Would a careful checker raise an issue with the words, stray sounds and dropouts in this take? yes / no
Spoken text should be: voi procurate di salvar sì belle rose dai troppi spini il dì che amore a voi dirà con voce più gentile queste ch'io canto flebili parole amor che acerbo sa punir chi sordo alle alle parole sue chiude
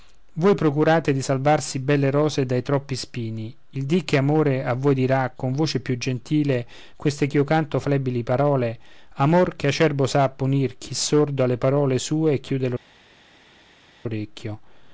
yes